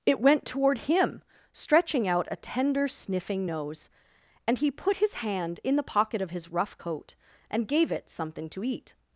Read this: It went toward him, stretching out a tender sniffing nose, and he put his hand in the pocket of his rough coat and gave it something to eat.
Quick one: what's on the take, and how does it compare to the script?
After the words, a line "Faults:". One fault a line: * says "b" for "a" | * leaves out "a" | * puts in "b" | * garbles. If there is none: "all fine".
It went toward him, stretching out a tender sniffing nose, and he put his hand in the pocket of his rough coat and gave it something to eat.
Faults:
all fine